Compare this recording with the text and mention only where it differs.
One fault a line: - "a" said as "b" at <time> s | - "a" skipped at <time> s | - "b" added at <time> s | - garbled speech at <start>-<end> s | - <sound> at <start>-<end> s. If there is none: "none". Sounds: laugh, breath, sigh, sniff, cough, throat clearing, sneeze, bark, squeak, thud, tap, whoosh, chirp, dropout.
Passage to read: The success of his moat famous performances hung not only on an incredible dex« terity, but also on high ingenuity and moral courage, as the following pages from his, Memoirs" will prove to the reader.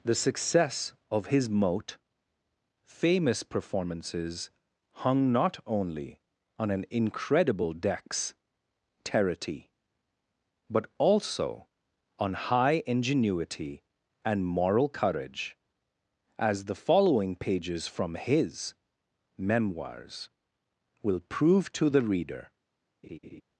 - laugh at 23.0-23.4 s